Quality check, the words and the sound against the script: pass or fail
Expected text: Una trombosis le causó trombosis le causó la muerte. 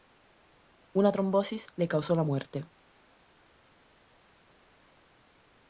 fail